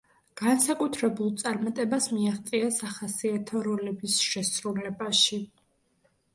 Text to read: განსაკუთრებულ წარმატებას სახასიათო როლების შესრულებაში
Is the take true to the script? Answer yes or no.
no